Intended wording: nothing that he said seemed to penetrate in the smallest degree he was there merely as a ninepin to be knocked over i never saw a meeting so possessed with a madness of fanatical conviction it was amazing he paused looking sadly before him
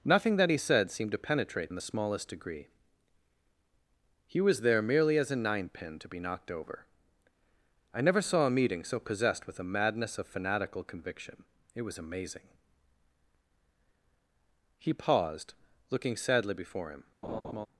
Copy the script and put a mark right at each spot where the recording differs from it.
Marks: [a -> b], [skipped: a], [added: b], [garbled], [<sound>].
nothing that he said seemed to penetrate in the smallest degree he was there merely as a ninepin to be knocked over i never saw a meeting so possessed with a madness of fanatical conviction it was amazing he paused looking sadly before him [laugh]